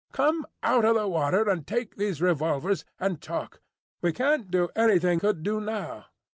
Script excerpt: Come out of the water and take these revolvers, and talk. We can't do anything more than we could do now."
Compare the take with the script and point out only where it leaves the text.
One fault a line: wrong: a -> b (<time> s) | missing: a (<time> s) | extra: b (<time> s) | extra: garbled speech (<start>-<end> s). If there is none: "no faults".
missing: more than we (5.2 s)